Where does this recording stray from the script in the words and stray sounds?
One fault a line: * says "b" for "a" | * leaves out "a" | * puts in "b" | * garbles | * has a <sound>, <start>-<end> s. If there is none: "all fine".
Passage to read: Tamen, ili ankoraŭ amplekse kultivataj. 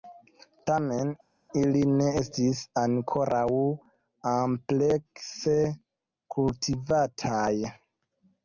* puts in "ne estis"